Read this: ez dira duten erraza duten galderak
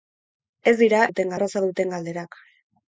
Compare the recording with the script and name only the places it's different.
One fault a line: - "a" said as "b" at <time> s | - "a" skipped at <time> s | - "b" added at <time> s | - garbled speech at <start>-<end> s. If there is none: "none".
none